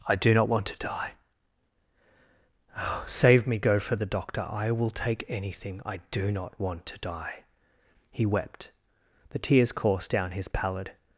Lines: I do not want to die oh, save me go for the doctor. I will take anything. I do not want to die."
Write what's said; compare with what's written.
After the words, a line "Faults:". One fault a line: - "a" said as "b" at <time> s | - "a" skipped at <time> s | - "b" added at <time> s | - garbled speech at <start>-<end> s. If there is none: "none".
I do not want to die oh, save me go for the doctor. I will take anything. I do not want to die." He wept; the tears coursed down his pallid
Faults:
- "He wept the tears coursed down his pallid" added at 8.1 s